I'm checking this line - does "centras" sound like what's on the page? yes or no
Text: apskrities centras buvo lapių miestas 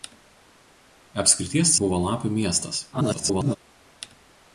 no